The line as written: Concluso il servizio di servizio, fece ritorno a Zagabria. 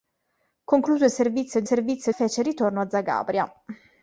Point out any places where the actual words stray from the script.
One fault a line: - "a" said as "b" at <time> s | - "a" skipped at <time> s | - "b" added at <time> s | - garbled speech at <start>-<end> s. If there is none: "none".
none